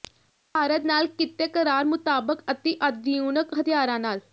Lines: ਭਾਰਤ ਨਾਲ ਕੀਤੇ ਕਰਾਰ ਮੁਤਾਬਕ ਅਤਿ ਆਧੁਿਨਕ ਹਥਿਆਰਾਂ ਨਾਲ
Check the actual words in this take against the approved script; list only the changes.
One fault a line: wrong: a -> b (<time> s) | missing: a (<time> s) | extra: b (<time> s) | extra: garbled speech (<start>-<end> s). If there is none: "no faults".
no faults